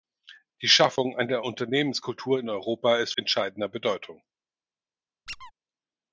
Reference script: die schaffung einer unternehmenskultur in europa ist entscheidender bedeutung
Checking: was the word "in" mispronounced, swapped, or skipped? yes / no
no